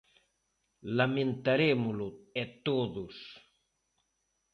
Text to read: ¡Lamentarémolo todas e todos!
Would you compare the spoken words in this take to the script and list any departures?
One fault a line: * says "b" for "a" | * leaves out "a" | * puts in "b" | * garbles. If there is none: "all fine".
* leaves out "todas"